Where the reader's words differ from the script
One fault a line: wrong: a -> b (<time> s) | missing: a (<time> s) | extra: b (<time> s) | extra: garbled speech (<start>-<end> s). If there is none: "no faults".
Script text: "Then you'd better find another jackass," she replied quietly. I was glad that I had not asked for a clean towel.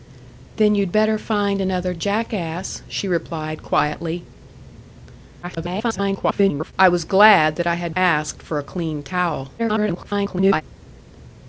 extra: garbled speech (5.4-6.7 s)
missing: not (7.9 s)
extra: garbled speech (9.6-10.6 s)